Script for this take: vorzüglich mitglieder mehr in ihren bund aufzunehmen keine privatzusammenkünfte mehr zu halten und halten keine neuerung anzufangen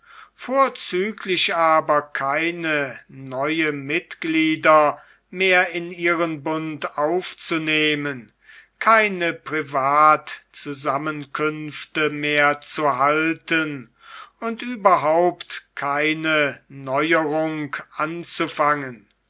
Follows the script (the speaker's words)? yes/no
no